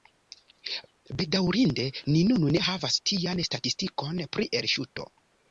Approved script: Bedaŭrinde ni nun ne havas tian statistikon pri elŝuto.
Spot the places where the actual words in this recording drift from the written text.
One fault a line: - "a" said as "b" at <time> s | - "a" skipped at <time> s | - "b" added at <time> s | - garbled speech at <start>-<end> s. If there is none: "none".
none